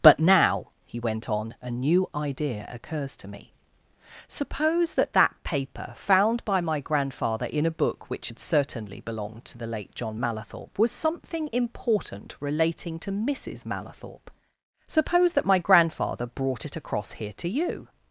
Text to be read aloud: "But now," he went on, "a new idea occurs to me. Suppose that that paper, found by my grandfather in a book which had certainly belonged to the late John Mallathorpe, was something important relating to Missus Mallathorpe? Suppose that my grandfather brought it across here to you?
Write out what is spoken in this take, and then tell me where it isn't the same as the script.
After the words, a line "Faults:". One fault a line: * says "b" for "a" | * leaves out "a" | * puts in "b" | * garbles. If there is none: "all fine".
"But now," he went on, "a new idea occurs to me. Suppose that that paper, found by my grandfather in a book which had certainly belonged to the late John Mallathorpe, was something important relating to Missus Mallathorpe? Suppose that my grandfather brought it across here to you?
Faults:
all fine